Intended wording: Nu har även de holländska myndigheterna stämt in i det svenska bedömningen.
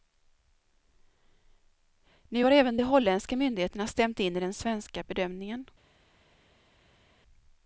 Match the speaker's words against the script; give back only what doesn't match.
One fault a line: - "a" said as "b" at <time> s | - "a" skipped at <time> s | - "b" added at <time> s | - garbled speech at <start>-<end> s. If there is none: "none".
- "det" said as "den" at 4.4 s